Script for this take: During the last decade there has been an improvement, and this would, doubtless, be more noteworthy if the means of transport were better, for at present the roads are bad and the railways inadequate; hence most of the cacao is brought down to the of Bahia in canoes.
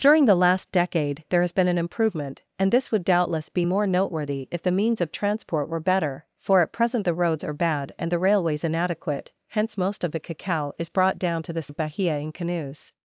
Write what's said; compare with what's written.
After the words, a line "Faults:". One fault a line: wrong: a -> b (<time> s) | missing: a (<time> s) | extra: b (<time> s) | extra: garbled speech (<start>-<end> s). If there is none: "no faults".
During the last decade there has been an improvement, and this would, doubtless, be more noteworthy if the means of transport were better, for at present the roads are bad and the railways inadequate; hence most of the cacao is brought down to the of Bahia in canoes.
Faults:
no faults